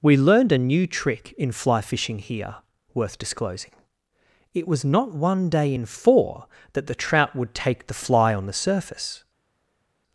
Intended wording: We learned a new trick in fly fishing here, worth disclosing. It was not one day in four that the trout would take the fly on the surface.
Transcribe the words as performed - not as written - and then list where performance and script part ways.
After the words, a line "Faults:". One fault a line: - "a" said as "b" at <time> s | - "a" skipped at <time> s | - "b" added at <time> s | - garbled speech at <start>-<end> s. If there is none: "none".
We learned a new trick in fly fishing here, worth disclosing. It was not one day in four that the trout would take the fly on the surface.
Faults:
none